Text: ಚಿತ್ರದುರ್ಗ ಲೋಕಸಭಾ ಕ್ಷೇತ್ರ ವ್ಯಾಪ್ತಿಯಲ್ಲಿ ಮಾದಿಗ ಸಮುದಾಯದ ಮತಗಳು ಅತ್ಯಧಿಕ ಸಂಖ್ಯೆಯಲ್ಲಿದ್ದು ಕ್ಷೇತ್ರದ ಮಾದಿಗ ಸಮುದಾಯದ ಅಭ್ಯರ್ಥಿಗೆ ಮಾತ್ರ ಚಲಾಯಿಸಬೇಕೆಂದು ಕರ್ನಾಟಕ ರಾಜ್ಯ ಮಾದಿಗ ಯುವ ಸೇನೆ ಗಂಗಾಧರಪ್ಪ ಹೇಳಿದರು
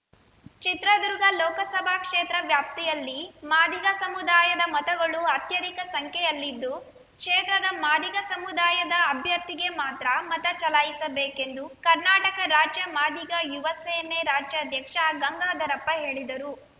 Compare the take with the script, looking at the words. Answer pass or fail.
fail